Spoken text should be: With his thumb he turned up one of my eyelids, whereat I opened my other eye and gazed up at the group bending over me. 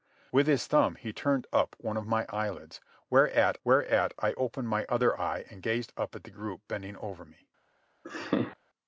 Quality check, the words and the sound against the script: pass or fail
fail